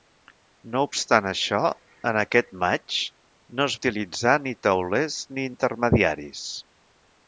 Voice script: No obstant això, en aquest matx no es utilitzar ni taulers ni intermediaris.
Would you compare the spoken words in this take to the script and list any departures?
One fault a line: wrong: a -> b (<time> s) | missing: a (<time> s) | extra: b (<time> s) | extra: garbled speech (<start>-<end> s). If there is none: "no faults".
no faults